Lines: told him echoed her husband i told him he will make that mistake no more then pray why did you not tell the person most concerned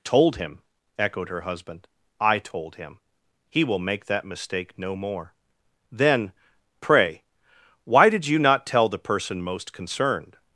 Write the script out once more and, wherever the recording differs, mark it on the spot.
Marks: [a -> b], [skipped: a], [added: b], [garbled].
told him echoed her husband i told him he will make that mistake no more then pray why did you not tell the person most concerned